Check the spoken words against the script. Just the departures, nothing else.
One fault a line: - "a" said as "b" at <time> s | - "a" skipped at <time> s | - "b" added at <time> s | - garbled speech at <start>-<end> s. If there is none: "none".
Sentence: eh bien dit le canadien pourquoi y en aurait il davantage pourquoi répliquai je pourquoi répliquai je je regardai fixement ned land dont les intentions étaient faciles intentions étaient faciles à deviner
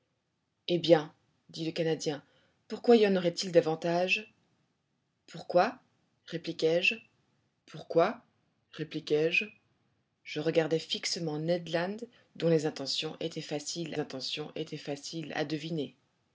none